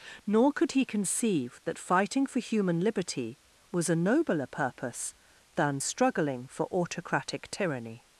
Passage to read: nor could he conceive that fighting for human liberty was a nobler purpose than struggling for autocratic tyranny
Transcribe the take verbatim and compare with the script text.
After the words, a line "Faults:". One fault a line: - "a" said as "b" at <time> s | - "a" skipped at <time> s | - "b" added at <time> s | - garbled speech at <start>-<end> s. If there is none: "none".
nor could he conceive that fighting for human liberty was a nobler purpose than struggling for autocratic tyranny
Faults:
none